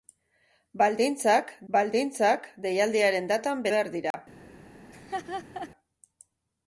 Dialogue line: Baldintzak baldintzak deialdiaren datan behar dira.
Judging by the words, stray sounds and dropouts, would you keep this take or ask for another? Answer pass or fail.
fail